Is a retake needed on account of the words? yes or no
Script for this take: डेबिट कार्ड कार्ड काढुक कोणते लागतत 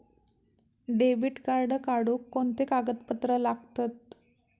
yes